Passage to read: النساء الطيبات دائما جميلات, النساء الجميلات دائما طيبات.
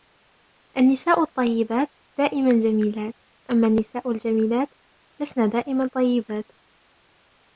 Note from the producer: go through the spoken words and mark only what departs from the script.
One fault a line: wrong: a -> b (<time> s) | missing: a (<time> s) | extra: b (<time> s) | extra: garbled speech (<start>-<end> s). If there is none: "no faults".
extra: أما (3.5 s)
extra: لسن (5.2 s)